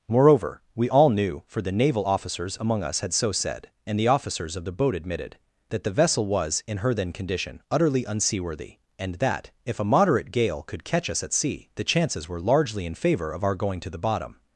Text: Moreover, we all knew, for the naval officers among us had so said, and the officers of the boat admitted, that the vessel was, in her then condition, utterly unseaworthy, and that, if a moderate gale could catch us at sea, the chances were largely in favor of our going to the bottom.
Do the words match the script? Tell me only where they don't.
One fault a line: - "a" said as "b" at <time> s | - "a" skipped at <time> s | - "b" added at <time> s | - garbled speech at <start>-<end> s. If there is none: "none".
none